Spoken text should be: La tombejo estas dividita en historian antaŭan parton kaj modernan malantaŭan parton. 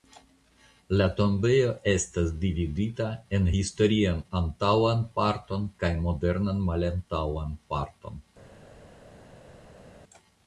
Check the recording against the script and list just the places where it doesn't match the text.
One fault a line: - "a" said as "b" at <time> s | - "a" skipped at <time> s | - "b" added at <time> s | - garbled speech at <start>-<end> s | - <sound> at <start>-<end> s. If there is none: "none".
none